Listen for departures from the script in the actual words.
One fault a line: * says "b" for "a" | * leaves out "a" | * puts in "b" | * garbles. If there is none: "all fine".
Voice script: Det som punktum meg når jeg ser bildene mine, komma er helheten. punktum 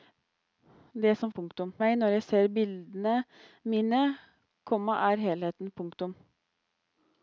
all fine